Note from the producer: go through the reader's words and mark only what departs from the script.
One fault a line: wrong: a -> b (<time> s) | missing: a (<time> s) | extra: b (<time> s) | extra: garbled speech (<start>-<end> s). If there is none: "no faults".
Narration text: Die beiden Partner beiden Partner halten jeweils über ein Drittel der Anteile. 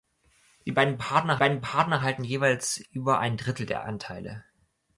no faults